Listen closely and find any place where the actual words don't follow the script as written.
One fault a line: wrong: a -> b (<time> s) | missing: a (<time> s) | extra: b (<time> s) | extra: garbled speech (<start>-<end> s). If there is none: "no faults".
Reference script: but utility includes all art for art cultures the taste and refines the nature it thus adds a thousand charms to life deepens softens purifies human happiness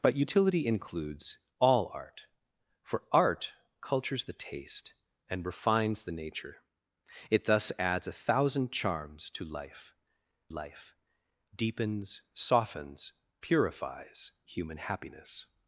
extra: life (10.5 s)